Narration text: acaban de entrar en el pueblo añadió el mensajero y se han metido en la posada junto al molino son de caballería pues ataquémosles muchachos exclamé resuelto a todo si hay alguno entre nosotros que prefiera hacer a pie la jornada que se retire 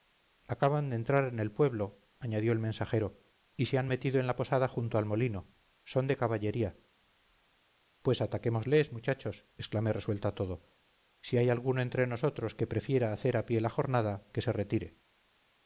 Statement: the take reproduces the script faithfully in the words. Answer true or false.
true